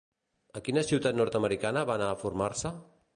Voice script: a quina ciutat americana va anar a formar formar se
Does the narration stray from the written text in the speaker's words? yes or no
yes